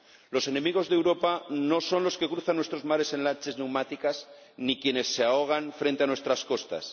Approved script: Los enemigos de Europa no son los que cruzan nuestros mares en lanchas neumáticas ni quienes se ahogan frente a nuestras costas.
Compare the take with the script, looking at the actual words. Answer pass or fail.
pass